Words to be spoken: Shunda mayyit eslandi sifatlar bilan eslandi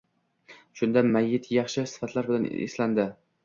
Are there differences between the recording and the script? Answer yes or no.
yes